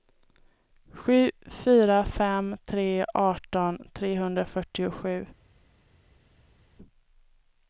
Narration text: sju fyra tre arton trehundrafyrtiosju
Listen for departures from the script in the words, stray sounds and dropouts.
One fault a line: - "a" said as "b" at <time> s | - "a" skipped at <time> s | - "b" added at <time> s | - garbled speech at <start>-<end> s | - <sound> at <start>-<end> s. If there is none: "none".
- "fem" added at 2.0 s